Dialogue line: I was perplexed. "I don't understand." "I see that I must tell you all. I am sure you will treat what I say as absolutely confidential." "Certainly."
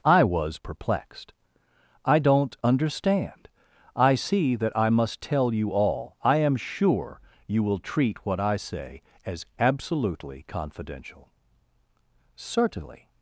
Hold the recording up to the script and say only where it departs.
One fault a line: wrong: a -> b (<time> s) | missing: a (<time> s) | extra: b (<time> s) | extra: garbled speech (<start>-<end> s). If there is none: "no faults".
no faults